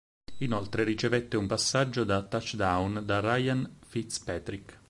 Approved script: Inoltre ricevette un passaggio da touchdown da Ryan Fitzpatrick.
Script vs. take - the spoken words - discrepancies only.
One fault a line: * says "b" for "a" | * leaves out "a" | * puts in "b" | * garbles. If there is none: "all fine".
all fine